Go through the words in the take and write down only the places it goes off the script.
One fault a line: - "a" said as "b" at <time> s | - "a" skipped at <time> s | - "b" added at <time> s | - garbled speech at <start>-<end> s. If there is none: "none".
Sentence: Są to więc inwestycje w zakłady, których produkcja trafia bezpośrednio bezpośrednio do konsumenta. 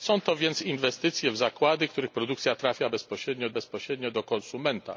none